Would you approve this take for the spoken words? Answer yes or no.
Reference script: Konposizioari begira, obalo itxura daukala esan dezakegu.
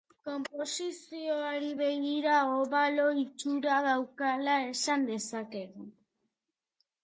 yes